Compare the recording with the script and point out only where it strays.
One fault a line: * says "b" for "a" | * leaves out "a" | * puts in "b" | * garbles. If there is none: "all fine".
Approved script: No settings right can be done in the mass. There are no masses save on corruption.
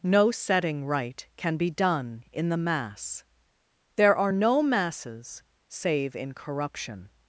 * says "setting" for "settings"
* says "in" for "on"